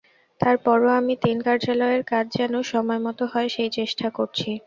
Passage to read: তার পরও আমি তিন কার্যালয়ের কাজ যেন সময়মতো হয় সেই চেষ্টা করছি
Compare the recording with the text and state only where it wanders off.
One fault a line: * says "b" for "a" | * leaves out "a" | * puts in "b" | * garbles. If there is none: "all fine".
all fine